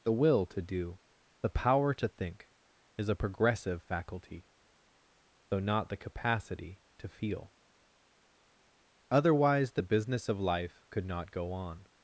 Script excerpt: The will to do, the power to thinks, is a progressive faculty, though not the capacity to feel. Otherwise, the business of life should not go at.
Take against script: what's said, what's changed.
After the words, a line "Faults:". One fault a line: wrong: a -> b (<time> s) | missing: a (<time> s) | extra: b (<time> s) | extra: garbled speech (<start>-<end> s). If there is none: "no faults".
The will to do, the power to think, is a progressive faculty, though not the capacity to feel. Otherwise, the business of life could not go on.
Faults:
wrong: thinks -> think (2.1 s)
wrong: should -> could (10.9 s)
wrong: at -> on (11.5 s)